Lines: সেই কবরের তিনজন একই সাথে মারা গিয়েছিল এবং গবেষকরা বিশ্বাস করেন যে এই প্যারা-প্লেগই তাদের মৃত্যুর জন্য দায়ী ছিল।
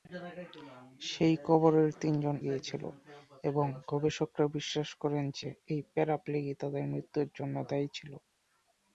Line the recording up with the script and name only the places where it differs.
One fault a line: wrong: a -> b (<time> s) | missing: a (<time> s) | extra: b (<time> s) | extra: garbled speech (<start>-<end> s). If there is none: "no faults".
missing: একই সাথে মারা (2.4 s)